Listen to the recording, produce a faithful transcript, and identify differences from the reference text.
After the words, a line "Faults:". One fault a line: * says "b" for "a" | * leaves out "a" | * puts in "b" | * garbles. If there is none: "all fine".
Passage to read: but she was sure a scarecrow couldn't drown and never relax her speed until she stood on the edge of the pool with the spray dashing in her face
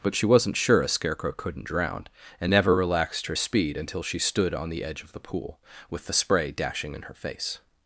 but she wasn't sure a scarecrow couldn't drown and never relaxed her speed until she stood on the edge of the pool with the spray dashing in her face
Faults:
* says "wasn't" for "was"
* says "relaxed" for "relax"